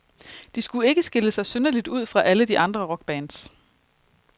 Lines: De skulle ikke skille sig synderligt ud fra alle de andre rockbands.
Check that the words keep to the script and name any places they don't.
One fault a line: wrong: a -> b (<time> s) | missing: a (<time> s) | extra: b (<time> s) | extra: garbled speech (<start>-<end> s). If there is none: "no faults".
no faults